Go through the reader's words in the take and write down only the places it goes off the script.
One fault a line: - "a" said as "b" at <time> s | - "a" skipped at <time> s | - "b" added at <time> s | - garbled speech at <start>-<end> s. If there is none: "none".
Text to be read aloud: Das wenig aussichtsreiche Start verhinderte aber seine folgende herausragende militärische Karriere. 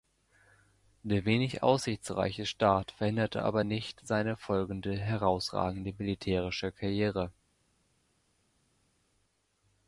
- "Das" said as "Der" at 1.0 s
- "nicht" added at 3.6 s